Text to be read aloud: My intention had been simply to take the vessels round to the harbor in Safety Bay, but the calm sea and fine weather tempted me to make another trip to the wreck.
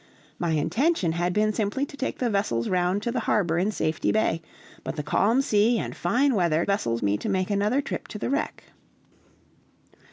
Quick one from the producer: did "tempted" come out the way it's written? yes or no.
no